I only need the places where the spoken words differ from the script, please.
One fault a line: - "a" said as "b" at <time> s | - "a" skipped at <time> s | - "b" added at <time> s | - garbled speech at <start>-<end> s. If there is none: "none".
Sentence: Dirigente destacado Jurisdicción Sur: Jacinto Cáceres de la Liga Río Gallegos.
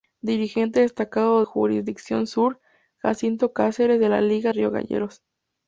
none